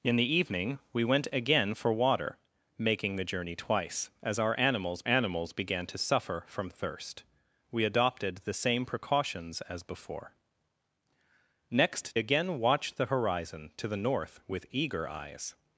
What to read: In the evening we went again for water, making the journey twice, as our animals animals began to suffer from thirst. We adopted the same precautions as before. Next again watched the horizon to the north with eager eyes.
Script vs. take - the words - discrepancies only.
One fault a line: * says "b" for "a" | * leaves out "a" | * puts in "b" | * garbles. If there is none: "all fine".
all fine